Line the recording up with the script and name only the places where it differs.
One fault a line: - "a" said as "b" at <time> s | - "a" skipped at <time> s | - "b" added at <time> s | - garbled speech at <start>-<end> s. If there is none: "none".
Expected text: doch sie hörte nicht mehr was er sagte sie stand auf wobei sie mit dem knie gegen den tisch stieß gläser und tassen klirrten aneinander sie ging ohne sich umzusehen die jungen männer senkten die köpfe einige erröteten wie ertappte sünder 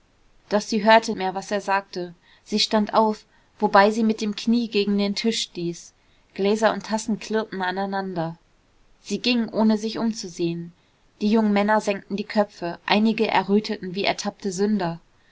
- "nicht" skipped at 1.1 s